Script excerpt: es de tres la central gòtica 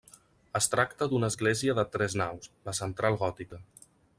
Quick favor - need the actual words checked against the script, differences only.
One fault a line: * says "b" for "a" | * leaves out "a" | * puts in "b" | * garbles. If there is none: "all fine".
* puts in "tracta d'una església"
* puts in "naus"